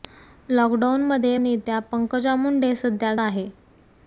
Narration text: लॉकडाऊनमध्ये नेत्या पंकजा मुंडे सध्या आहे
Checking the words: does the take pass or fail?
pass